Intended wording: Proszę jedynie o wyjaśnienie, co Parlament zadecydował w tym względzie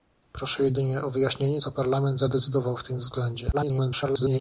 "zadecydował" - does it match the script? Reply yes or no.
yes